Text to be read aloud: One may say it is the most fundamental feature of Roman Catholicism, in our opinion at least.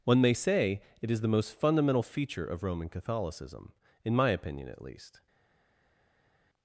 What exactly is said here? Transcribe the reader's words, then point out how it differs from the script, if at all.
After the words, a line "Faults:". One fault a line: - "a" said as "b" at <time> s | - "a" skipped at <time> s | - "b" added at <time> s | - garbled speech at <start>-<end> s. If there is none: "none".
One may say it is the most fundamental feature of Roman Catholicism, in my opinion at least.
Faults:
- "our" said as "my" at 4.1 s